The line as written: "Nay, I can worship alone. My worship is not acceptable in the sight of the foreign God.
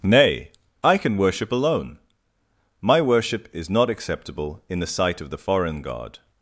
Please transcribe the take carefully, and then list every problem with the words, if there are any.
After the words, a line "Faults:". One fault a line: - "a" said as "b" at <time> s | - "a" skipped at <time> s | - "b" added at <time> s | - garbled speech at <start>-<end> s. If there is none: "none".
"Nay, I can worship alone. My worship is not acceptable in the sight of the foreign God.
Faults:
none